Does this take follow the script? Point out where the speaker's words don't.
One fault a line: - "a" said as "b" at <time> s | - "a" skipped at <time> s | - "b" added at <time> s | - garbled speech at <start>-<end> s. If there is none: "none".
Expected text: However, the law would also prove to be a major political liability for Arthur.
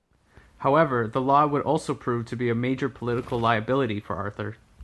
none